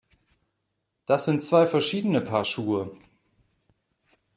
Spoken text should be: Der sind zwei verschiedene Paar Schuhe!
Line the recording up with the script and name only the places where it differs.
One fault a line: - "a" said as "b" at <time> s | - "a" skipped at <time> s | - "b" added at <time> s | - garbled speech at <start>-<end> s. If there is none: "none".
- "Der" said as "Das" at 1.1 s